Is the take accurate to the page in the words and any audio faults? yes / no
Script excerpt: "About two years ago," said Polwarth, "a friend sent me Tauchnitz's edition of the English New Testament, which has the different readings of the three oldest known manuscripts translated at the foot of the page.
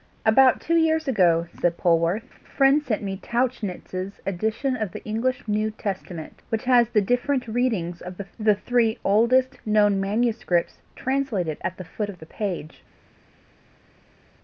yes